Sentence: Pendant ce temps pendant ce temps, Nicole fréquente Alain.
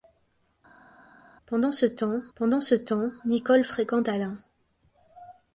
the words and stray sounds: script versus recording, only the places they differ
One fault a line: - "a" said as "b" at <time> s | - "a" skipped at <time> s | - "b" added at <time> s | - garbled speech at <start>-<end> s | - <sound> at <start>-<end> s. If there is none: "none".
none